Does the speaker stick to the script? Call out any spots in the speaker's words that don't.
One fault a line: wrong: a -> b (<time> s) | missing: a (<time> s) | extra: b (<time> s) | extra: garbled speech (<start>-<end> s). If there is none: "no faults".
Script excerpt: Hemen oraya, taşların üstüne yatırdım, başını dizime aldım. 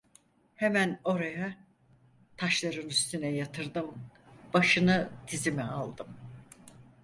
no faults